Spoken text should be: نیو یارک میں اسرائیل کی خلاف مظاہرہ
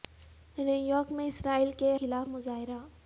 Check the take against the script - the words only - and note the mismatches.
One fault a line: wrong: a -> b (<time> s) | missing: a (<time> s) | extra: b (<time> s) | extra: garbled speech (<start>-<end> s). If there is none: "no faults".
no faults